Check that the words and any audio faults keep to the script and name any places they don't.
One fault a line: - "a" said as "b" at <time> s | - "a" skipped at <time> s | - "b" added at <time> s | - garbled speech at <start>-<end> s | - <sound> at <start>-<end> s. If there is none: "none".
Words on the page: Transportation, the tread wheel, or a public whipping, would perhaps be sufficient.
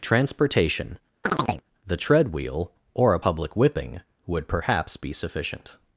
- chirp at 1.2-1.7 s